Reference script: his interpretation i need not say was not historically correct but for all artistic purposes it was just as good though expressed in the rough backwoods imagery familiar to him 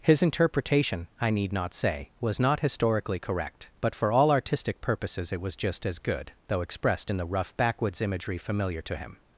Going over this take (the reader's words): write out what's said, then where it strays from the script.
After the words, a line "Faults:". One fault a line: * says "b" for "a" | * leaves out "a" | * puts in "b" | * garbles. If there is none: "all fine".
his interpretation i need not say was not historically correct but for all artistic purposes it was just as good though expressed in the rough backwoods imagery familiar to him
Faults:
all fine